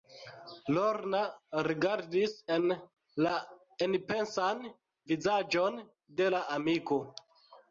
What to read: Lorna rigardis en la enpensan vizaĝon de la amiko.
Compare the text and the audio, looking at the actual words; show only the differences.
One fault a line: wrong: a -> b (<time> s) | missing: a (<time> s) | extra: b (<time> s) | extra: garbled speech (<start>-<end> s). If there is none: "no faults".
no faults